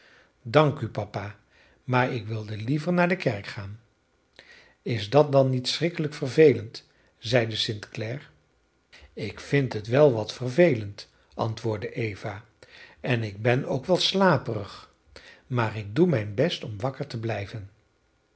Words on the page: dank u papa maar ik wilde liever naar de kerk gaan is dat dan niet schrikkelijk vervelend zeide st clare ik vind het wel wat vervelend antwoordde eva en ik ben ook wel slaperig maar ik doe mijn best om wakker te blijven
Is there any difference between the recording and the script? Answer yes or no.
no